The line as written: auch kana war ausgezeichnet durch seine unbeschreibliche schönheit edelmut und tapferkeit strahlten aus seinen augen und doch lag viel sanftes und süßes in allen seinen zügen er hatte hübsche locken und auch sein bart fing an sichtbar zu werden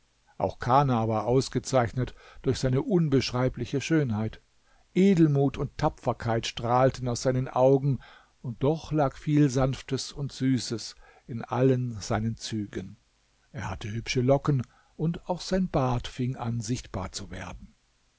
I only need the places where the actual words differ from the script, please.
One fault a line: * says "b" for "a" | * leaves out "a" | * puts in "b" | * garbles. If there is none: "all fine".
all fine